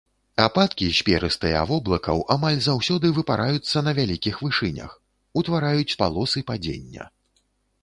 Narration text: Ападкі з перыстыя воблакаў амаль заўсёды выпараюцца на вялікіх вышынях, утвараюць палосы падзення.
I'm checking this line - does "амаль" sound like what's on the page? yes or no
yes